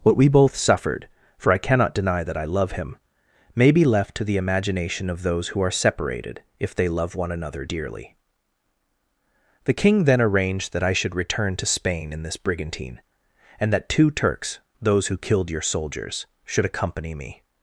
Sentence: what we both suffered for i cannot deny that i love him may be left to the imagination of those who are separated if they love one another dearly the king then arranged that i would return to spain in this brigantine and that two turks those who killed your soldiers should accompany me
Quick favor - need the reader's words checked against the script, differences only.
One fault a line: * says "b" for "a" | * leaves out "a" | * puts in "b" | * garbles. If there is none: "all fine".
* says "should" for "would"